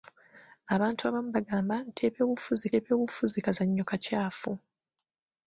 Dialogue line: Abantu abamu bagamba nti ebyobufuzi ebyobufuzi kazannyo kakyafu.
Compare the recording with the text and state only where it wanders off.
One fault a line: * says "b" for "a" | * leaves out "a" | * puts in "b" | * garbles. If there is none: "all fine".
all fine